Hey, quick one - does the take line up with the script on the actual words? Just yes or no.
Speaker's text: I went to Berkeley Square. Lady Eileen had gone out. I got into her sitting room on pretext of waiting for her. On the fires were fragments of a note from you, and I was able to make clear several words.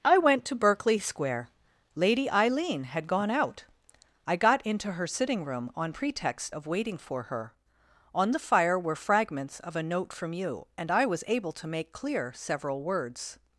no